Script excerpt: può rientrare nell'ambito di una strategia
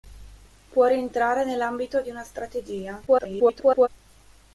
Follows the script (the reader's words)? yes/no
no